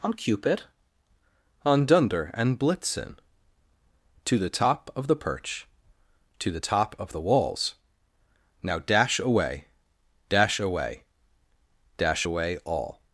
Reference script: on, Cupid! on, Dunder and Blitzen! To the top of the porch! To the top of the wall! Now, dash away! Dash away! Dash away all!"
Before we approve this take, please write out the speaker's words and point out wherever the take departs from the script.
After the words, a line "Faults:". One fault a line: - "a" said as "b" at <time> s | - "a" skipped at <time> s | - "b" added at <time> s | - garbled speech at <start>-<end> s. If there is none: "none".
on, Cupid! on, Dunder and Blitzen! To the top of the perch! To the top of the walls! Now, dash away! Dash away! Dash away all!"
Faults:
- "porch" said as "perch" at 5.2 s
- "wall" said as "walls" at 7.2 s